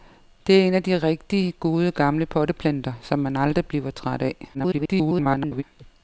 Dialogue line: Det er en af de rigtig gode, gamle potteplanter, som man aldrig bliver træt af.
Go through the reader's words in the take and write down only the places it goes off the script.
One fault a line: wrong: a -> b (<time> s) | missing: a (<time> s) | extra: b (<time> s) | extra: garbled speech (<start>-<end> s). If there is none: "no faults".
extra: garbled speech (4.5-5.6 s)